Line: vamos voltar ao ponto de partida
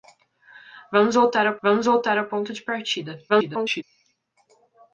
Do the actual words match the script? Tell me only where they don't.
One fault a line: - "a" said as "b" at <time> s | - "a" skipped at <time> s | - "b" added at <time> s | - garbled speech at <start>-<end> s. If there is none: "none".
- "vamos voltar ao" added at 1.6 s
- garbled speech at 3.3-3.8 s